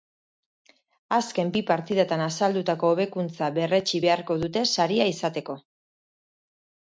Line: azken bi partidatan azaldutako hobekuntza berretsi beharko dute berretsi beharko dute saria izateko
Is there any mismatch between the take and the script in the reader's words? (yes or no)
yes